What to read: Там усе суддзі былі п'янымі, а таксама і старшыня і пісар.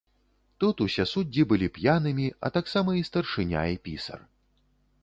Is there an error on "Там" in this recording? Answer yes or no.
yes